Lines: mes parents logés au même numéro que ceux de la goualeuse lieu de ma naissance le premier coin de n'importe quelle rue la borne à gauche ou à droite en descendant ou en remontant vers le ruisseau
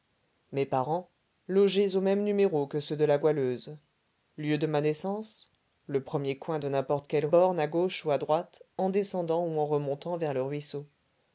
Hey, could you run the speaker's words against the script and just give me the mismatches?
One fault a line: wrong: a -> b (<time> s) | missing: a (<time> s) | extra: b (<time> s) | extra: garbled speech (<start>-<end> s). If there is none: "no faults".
missing: rue la (7.3 s)